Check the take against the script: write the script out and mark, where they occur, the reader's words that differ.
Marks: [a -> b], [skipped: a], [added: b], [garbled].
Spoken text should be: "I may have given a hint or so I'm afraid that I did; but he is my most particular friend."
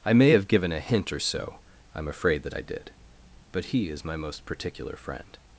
"I may have given a hint or so I'm afraid that I did; but he is my most particular friend."